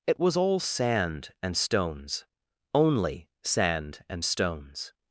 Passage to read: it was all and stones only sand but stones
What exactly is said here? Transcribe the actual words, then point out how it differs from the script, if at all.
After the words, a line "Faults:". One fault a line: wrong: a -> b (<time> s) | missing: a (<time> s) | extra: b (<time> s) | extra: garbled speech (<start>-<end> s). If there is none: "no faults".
it was all sand and stones only sand and stones
Faults:
extra: sand (0.6 s)
wrong: but -> and (4.1 s)